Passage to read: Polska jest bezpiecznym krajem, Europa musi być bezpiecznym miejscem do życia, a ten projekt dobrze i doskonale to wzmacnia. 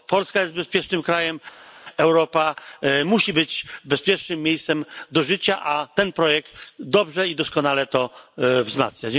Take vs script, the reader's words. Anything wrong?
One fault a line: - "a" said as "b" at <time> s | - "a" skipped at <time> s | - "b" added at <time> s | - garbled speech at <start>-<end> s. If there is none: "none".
none